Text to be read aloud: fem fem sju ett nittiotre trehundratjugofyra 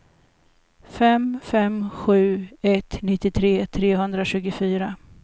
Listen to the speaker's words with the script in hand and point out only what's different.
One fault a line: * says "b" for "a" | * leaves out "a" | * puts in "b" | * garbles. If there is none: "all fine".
all fine